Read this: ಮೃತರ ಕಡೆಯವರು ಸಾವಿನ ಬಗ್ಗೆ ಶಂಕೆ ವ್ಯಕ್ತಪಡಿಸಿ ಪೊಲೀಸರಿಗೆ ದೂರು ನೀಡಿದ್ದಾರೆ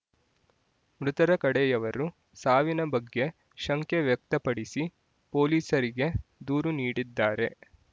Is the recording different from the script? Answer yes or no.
no